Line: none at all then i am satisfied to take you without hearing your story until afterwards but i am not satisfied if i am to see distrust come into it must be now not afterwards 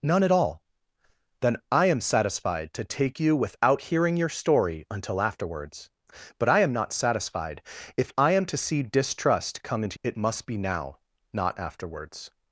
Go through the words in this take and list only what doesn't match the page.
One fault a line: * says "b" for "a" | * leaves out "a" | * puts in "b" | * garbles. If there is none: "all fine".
all fine